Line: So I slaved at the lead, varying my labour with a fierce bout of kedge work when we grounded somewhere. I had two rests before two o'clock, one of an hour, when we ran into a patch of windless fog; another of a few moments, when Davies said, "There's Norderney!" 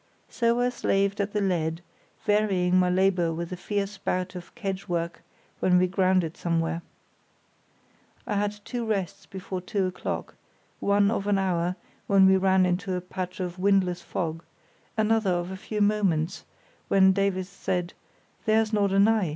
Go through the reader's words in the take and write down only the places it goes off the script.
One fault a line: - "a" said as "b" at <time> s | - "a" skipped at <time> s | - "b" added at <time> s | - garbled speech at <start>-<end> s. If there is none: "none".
none